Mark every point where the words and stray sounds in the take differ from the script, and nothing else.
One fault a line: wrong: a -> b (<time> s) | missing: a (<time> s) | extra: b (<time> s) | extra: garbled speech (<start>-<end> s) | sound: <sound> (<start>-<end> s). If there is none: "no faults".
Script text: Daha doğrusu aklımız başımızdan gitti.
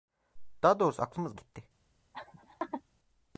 missing: başımızdan (1.4 s)
sound: laugh (2.1-2.8 s)